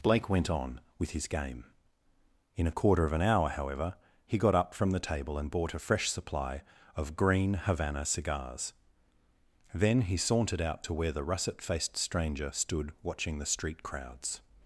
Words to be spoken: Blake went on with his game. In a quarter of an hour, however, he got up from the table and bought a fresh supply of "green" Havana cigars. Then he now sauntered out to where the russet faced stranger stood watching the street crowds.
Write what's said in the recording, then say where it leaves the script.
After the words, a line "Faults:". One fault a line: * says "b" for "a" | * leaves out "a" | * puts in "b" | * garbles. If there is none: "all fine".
Blake went on with his game. In a quarter of an hour, however, he got up from the table and bought a fresh supply of "green" Havana cigars. Then he sauntered out to where the russet faced stranger stood watching the street crowds.
Faults:
* leaves out "now"